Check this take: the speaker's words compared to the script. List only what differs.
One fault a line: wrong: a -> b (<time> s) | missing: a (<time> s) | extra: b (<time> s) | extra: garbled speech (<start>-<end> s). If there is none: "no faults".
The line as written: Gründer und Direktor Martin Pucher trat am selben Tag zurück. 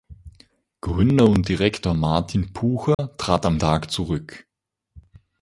missing: selben (3.6 s)